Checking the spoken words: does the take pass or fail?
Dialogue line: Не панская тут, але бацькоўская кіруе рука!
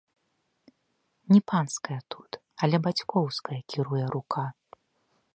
pass